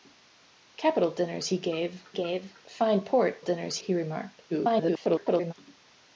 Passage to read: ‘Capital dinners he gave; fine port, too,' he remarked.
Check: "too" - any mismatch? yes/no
yes